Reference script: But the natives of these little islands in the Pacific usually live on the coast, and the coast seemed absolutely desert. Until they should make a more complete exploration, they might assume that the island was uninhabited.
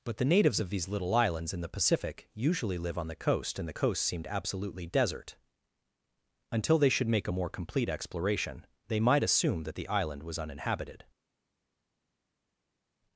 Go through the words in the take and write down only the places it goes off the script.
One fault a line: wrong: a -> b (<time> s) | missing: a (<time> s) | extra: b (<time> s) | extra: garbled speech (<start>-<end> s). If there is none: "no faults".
no faults